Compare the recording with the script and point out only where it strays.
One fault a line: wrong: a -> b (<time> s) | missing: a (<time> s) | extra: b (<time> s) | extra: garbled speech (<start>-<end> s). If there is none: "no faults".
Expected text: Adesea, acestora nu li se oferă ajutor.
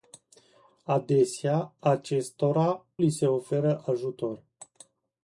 missing: nu (2.9 s)